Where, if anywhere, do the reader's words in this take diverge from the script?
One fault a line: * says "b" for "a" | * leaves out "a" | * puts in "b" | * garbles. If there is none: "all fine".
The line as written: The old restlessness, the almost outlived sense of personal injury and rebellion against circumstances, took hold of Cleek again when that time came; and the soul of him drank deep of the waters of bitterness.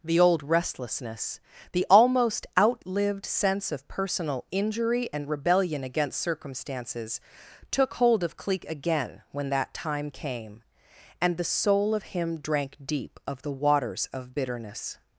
all fine